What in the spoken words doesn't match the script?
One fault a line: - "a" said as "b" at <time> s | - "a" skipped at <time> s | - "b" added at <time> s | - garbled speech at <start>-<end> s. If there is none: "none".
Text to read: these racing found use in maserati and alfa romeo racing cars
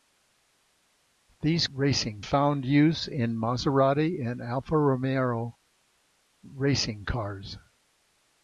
none